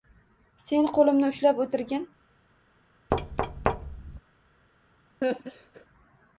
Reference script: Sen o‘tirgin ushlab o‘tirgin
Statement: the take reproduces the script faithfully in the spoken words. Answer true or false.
false